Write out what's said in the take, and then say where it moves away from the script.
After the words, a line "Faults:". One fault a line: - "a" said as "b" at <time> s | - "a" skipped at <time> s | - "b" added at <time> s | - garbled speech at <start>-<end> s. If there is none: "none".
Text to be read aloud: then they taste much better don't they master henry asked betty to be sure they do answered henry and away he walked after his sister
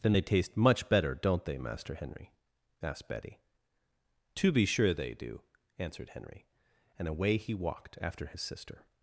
then they taste much better don't they master henry asked betty to be sure they do answered henry and away he walked after his sister
Faults:
none